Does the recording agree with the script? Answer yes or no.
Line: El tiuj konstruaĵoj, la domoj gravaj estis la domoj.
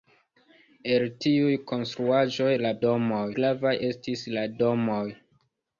yes